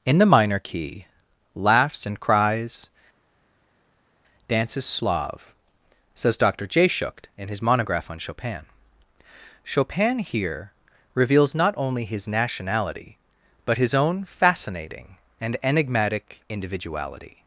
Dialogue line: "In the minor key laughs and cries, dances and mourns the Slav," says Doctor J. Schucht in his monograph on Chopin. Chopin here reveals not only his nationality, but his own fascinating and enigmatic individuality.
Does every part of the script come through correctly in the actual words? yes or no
no